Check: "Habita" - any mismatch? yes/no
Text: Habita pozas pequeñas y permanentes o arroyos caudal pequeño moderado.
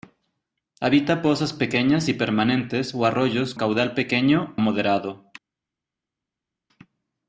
no